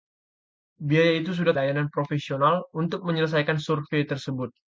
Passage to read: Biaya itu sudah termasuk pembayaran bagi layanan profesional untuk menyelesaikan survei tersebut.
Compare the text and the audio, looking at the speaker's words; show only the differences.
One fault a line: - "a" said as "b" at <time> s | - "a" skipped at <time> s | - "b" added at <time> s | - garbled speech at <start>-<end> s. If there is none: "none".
- "termasuk pembayaran bagi" skipped at 1.5 s